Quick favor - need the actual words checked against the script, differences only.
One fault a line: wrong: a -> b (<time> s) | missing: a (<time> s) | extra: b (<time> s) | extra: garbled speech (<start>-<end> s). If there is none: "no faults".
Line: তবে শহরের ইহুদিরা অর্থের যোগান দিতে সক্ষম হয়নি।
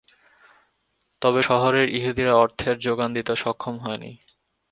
no faults